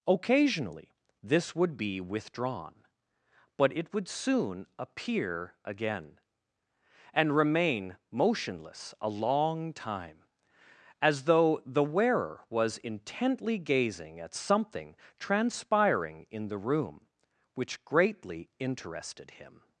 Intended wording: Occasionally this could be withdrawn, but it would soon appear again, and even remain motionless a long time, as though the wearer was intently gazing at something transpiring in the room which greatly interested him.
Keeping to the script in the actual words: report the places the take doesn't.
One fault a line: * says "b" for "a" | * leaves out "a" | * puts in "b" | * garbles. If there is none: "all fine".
* says "would" for "could"
* leaves out "even"